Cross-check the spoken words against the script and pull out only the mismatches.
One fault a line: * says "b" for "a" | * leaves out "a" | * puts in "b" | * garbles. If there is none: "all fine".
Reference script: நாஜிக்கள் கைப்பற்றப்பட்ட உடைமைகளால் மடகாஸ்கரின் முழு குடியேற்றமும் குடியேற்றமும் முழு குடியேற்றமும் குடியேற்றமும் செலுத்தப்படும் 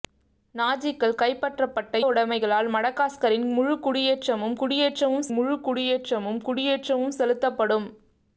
all fine